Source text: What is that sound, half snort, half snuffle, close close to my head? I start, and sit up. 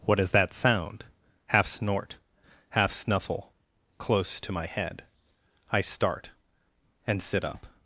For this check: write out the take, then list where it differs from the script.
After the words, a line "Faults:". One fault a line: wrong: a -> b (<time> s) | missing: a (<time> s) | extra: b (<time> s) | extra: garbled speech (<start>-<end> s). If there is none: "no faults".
What is that sound, half snort, half snuffle, close to my head? I start, and sit up.
Faults:
missing: close (4.4 s)